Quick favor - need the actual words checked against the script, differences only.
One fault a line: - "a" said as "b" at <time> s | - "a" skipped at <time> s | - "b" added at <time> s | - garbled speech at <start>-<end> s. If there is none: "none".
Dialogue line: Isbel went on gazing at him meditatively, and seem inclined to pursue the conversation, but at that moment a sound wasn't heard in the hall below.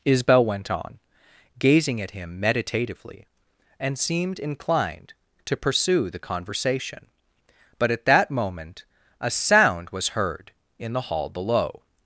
- "seem" said as "seemed" at 4.0 s
- "wasn't" said as "was" at 9.9 s